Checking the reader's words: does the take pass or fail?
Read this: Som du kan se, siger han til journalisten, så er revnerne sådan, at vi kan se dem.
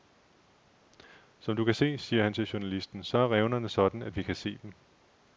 pass